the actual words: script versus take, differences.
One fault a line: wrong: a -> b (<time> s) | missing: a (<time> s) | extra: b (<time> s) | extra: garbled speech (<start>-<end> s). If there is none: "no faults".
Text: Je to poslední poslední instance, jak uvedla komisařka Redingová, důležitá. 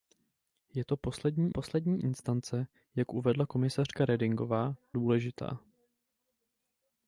no faults